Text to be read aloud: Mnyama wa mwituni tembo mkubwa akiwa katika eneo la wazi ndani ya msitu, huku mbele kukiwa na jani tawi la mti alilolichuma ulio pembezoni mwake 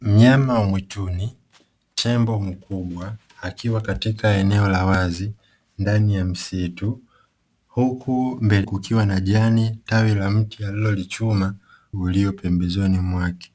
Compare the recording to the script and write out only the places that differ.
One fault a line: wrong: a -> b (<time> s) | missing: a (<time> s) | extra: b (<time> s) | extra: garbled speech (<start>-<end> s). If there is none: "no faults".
no faults